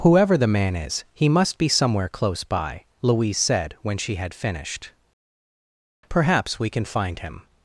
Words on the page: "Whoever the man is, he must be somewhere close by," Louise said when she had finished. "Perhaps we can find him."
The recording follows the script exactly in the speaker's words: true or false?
true